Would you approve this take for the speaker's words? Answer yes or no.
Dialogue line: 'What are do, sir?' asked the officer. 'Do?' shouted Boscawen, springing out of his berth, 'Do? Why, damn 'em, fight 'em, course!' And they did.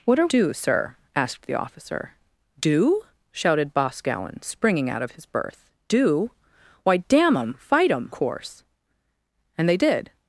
yes